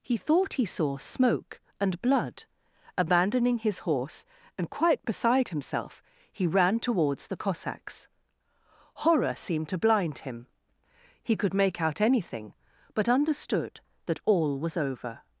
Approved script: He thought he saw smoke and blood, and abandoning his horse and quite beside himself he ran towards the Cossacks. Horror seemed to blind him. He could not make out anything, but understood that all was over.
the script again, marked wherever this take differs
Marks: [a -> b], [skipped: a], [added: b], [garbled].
He thought he saw smoke and blood, [skipped: and] abandoning his horse and quite beside himself he ran towards the Cossacks. Horror seemed to blind him. He could [skipped: not] make out anything, but understood that all was over.